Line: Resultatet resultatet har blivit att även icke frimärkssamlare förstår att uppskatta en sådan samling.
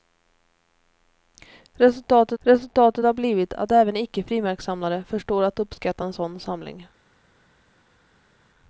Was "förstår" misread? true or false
false